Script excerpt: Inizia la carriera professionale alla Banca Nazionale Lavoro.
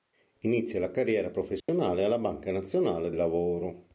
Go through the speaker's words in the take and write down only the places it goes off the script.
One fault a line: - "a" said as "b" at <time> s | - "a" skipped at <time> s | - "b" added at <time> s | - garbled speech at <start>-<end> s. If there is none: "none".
none